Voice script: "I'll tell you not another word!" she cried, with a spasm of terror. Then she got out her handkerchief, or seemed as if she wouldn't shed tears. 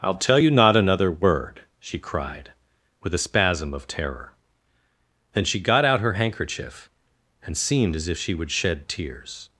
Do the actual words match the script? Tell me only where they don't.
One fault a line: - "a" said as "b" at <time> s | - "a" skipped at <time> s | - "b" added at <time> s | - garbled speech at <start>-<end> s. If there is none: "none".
- "or" said as "and" at 7.4 s
- "wouldn't" said as "would" at 8.3 s